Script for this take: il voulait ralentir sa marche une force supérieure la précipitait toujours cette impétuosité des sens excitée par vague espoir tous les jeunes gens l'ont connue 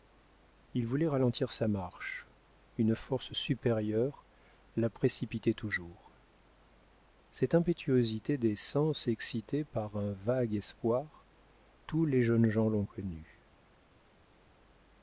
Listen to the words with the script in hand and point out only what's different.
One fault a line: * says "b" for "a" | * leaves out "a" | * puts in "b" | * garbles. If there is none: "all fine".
* puts in "un"